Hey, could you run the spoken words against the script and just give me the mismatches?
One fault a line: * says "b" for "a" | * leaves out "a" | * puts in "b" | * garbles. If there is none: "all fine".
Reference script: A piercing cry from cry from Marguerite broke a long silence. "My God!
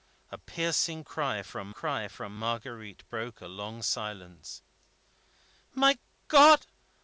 all fine